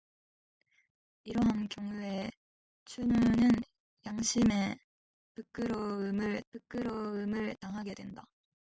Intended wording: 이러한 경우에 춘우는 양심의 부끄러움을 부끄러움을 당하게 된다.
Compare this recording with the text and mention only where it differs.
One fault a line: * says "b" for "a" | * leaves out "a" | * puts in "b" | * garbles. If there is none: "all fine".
all fine